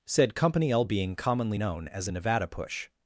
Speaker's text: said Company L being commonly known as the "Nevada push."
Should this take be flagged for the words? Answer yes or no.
yes